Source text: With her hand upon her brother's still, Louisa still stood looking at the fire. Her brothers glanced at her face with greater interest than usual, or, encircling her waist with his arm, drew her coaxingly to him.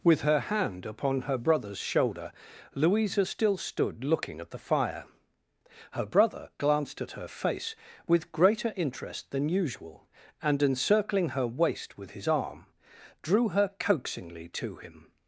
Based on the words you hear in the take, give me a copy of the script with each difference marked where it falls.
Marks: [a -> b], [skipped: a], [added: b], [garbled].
With her hand upon her brother's [still, -> shoulder] Louisa still stood looking at the fire. Her [brothers -> brother] glanced at her face with greater interest than usual, [or, -> and] encircling her waist with his arm, drew her coaxingly to him.